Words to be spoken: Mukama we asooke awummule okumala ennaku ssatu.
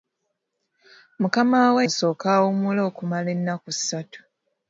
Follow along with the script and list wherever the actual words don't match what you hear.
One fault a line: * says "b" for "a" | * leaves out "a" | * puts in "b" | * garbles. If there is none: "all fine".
all fine